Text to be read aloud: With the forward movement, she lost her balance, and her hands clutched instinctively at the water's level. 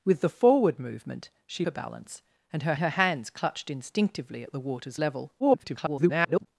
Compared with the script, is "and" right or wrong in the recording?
right